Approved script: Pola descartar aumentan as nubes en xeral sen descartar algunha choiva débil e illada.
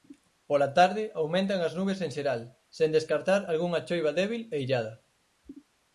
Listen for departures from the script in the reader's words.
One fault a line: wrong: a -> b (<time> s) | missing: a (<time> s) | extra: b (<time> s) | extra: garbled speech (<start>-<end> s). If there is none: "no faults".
wrong: descartar -> tarde (0.8 s)